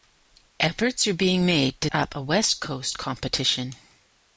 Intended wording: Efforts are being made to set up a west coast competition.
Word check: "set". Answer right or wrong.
wrong